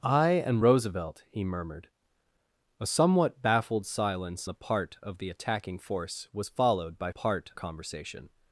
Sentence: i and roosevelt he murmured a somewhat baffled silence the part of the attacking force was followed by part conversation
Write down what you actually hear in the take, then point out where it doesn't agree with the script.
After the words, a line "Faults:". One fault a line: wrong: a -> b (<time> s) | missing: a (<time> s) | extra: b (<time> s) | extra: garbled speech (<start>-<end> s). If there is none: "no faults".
i and roosevelt he murmured a somewhat baffled silence the part of the attacking force was followed by part conversation
Faults:
no faults